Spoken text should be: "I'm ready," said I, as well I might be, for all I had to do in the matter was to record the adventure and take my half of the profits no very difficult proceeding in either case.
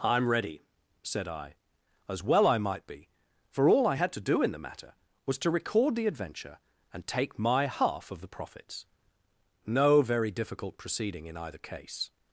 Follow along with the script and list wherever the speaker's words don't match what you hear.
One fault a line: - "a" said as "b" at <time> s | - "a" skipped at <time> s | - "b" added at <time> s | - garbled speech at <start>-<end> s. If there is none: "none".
none